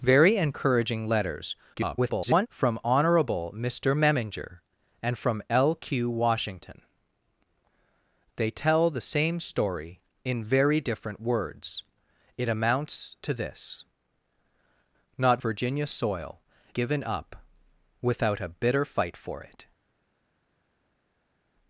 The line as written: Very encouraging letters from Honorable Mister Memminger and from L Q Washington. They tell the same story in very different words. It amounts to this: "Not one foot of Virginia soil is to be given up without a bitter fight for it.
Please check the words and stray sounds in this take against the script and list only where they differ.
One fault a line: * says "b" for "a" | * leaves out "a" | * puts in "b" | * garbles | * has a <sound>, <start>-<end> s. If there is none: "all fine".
* garbles
* leaves out "one foot of"
* leaves out "is to be"